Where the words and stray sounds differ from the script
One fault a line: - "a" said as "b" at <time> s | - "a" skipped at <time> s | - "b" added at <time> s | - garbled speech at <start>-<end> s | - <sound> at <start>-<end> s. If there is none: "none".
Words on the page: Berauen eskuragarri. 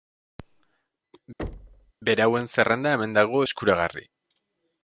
- thud at 1.4-1.9 s
- "zerrenda hemen dago" added at 2.5 s